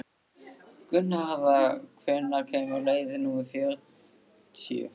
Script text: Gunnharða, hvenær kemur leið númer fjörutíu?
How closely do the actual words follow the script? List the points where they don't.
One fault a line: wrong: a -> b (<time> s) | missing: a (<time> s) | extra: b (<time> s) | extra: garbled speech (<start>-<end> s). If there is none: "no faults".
no faults